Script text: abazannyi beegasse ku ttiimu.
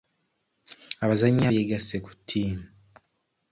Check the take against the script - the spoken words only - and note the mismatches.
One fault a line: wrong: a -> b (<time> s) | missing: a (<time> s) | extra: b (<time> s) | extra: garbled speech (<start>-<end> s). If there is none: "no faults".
no faults